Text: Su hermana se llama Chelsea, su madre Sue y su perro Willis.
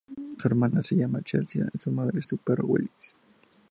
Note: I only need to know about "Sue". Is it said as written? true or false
false